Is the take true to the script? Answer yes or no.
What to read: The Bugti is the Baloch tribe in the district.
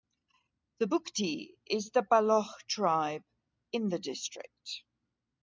yes